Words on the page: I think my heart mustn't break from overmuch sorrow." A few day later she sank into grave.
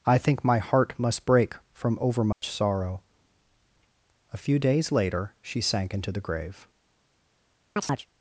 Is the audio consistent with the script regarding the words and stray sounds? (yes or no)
no